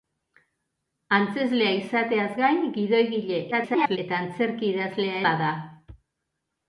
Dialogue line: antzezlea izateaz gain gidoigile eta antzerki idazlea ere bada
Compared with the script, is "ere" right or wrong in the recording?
wrong